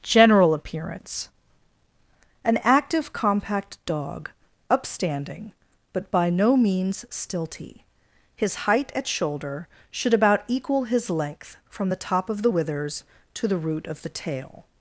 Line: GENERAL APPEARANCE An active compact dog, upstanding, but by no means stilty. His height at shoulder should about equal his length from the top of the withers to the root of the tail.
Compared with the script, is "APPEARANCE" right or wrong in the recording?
right